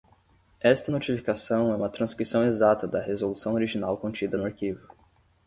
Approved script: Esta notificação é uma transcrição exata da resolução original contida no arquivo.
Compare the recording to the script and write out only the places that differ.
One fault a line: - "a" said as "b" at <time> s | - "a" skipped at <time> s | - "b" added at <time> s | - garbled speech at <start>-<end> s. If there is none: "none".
none